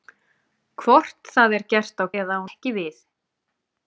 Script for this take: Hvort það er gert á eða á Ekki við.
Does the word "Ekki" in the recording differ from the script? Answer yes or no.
no